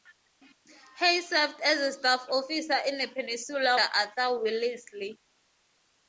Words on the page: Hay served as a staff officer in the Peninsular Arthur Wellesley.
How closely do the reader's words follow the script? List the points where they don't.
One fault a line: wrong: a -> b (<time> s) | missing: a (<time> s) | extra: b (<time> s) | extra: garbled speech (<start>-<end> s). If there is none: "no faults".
no faults